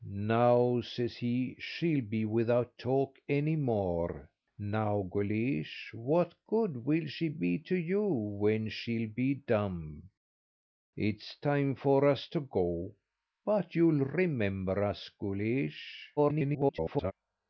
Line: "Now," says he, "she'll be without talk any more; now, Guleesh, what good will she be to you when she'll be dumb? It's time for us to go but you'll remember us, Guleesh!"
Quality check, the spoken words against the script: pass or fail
fail